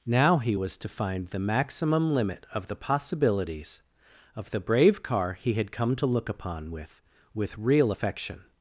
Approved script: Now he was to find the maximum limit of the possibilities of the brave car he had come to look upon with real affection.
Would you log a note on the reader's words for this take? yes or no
yes